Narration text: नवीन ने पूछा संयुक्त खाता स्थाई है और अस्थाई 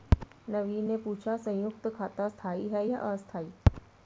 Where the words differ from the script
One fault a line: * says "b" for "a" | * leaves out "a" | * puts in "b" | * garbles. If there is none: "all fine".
* says "या" for "और"